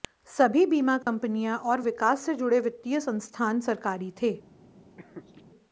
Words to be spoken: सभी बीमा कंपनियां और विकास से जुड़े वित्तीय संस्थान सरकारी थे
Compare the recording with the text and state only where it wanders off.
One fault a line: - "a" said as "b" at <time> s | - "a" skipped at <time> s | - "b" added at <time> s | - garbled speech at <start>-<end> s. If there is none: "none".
none